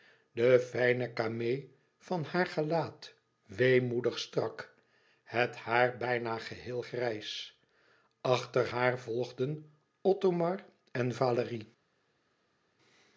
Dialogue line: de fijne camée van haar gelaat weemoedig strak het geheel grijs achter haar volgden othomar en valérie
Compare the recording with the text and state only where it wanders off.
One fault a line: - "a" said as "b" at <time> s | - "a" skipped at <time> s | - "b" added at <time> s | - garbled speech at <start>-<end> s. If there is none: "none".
- "haar bijna" added at 5.5 s